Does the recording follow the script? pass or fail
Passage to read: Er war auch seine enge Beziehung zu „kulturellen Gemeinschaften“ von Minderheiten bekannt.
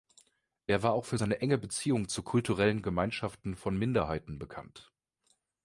fail